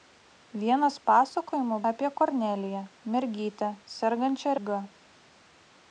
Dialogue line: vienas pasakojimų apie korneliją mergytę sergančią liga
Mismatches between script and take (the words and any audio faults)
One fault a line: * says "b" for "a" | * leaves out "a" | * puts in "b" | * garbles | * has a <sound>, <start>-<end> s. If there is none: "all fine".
all fine